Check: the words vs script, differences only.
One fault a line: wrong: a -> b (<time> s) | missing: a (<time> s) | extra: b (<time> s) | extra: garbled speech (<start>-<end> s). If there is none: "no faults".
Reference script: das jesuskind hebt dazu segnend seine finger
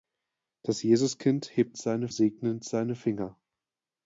wrong: dazu -> seine (1.8 s)